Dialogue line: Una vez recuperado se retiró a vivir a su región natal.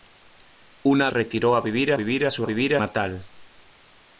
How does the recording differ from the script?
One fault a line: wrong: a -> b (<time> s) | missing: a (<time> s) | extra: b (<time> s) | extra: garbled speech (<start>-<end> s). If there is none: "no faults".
missing: vez recuperado se (1.1 s)
extra: vivir (1.9 s)
wrong: región -> vivir (2.4 s)